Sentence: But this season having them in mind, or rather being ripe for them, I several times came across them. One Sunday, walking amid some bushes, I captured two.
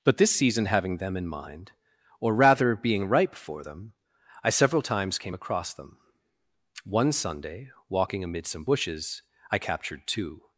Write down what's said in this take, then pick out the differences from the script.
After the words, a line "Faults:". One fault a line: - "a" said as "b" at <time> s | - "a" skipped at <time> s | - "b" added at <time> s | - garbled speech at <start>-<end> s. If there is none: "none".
But this season having them in mind, or rather being ripe for them, I several times came across them. One Sunday, walking amid some bushes, I captured two.
Faults:
none